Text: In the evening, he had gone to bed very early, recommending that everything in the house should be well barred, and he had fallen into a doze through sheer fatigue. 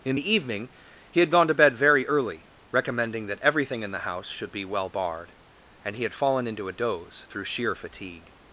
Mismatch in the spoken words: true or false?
false